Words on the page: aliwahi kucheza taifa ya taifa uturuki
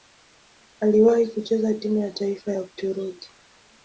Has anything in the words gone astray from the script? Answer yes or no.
yes